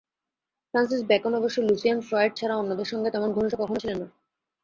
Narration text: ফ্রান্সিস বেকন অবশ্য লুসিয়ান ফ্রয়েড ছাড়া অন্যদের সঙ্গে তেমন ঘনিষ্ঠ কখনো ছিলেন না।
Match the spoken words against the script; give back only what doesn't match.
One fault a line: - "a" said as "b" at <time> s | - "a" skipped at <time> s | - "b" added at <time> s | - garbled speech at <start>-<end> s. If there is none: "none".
none